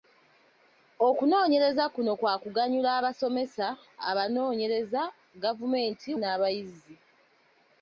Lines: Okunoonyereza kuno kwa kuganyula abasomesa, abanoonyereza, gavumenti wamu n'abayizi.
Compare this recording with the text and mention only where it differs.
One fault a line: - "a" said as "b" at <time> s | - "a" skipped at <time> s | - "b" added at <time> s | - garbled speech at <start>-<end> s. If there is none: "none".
- "wamu" skipped at 6.1 s